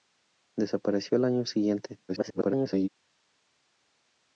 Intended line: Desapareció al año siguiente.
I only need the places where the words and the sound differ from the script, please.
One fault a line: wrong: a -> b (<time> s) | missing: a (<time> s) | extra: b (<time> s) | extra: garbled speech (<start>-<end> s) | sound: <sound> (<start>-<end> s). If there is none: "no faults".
extra: garbled speech (2.1-2.9 s)